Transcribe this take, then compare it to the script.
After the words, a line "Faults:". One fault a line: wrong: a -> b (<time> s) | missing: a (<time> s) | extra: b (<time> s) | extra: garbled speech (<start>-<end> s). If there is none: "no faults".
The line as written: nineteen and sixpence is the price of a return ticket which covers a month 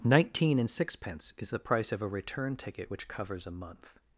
nineteen and sixpence is the price of a return ticket which covers a month
Faults:
no faults